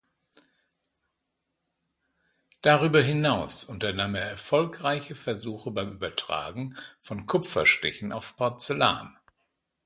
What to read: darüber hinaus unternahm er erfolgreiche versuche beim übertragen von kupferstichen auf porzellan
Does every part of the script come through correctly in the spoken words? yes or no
yes